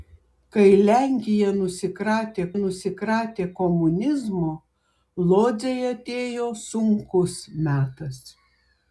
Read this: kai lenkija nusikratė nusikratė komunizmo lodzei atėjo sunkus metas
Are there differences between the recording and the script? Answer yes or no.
no